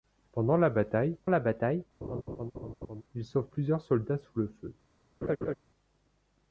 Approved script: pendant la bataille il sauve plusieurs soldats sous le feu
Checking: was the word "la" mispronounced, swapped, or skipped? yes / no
no